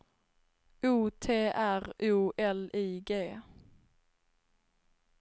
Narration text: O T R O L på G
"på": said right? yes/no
no